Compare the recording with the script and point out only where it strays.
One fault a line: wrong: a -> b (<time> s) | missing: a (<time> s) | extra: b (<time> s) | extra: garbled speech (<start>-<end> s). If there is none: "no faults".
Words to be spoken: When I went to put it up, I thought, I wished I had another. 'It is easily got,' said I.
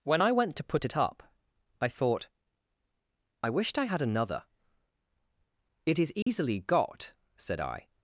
no faults